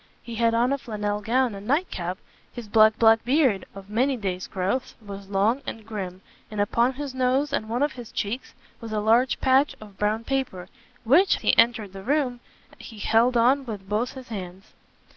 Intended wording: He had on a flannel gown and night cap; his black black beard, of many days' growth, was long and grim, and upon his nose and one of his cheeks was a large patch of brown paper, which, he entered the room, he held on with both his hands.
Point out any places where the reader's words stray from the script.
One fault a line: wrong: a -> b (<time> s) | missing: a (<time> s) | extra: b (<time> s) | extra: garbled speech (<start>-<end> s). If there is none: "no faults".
no faults